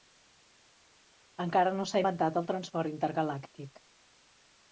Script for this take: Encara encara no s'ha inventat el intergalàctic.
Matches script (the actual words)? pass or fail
fail